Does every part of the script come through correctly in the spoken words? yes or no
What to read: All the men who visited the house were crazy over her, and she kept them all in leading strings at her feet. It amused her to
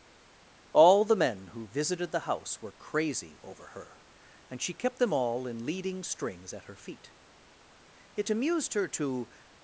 yes